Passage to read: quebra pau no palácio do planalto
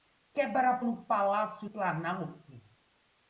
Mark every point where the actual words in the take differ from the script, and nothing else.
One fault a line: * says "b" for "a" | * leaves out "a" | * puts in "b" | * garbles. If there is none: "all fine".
* leaves out "pau"
* leaves out "do"